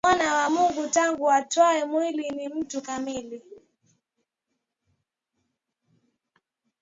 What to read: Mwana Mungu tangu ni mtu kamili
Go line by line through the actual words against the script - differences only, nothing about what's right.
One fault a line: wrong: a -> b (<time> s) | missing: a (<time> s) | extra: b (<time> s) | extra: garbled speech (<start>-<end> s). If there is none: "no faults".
extra: wa (0.3 s)
extra: atwae mwili (1.3 s)